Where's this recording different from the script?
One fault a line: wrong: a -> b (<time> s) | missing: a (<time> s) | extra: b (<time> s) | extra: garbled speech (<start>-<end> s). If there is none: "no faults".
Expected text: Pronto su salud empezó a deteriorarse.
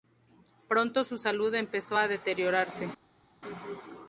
no faults